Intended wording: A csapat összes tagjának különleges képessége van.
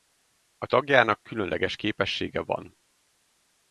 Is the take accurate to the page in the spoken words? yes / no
no